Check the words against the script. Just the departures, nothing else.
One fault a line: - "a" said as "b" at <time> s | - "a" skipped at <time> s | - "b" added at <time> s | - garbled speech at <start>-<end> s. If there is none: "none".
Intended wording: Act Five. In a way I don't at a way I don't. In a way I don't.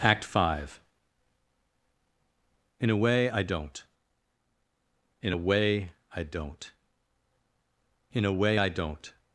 - "at" said as "in" at 5.2 s